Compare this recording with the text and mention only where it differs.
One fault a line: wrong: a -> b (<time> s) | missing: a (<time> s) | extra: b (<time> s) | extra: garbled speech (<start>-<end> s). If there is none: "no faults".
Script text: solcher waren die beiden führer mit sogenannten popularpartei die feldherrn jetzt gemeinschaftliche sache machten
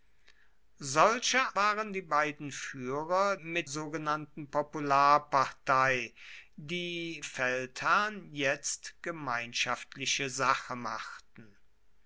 no faults